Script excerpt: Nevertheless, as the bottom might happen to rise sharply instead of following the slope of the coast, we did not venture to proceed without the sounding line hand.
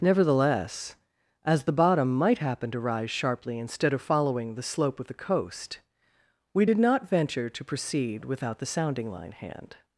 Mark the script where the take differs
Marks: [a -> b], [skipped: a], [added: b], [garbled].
Nevertheless, as the bottom might happen to rise sharply instead of following the slope of the coast, we did not venture to proceed without the sounding line hand.